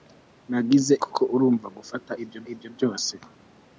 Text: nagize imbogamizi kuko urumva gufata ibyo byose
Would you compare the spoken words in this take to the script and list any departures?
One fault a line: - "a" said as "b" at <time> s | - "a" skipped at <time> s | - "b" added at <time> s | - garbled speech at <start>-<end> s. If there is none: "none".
- "imbogamizi" skipped at 0.9 s
- "ibyo" added at 2.5 s